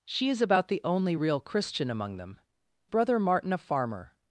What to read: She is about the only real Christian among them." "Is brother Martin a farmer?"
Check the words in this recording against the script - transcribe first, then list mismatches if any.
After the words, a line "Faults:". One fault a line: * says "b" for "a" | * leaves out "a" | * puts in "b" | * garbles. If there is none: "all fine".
She is about the only real Christian among them." "Brother Martin a farmer?"
Faults:
* leaves out "Is"